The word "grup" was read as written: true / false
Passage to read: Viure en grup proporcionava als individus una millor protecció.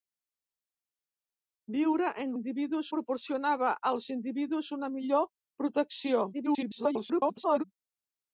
false